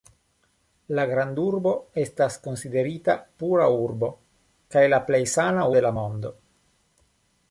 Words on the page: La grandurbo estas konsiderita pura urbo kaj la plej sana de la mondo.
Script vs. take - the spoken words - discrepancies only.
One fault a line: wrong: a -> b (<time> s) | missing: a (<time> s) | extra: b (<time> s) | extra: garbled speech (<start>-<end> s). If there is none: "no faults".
no faults